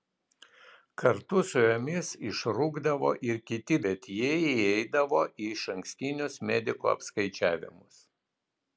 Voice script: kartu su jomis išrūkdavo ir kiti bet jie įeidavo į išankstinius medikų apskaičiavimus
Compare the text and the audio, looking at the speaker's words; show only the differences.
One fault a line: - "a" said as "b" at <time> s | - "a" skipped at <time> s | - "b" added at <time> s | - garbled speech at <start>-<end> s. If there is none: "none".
none